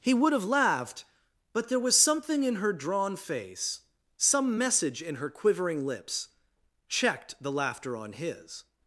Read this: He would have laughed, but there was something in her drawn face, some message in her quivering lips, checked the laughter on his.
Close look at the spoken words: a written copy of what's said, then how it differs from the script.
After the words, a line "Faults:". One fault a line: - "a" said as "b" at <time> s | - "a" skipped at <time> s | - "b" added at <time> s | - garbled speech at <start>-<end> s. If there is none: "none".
He would have laughed, but there was something in her drawn face, some message in her quivering lips, checked the laughter on his.
Faults:
none